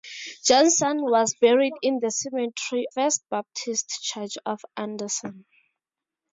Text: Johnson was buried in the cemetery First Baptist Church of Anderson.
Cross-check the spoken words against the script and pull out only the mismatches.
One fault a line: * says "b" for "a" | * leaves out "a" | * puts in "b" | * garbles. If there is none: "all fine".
all fine